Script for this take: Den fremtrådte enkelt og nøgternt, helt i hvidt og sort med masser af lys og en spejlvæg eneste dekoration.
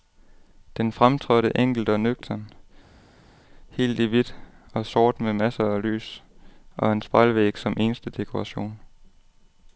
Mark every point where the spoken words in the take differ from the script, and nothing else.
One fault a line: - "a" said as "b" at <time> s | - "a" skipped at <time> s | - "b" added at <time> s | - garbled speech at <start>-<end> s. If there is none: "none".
- "som" added at 7.6 s